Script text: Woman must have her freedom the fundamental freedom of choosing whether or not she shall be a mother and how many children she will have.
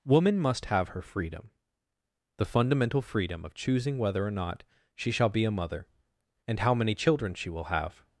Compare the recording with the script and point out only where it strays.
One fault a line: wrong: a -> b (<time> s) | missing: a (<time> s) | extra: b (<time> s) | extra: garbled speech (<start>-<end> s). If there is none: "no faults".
no faults